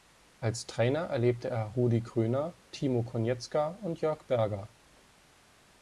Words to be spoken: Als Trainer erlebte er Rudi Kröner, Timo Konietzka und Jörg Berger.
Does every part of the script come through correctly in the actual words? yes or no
yes